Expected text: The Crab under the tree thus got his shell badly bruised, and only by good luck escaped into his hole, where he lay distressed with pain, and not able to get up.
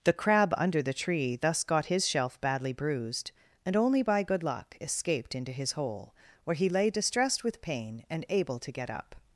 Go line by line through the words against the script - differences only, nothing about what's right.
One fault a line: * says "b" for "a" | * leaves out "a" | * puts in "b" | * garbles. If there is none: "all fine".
* says "shelf" for "shell"
* leaves out "not"